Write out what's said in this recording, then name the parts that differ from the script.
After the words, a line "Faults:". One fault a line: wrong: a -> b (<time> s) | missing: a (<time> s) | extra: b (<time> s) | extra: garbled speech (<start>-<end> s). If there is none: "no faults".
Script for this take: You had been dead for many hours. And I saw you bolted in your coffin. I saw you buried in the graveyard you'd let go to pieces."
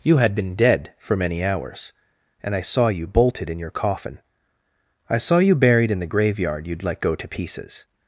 You had been dead for many hours. And I saw you bolted in your coffin. I saw you buried in the graveyard you'd let go to pieces."
Faults:
no faults